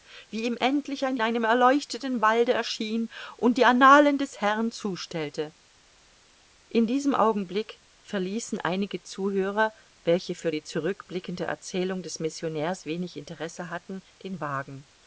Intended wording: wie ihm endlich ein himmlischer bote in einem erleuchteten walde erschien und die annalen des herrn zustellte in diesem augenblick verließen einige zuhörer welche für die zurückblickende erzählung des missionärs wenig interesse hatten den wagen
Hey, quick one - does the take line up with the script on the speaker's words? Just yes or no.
no